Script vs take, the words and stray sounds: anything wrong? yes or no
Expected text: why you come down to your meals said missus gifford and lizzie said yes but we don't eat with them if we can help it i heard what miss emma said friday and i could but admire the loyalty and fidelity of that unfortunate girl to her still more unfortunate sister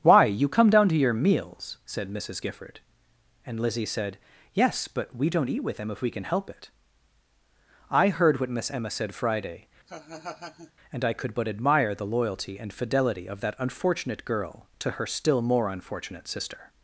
yes